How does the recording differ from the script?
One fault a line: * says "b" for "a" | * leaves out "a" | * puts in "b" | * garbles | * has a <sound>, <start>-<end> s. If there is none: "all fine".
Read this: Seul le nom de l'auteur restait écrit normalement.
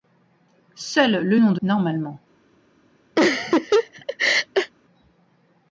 * leaves out "l'auteur restait écrit"
* has a laugh, 3.2-4.7 s